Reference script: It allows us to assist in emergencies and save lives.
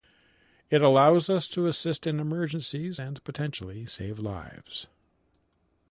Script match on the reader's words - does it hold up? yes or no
no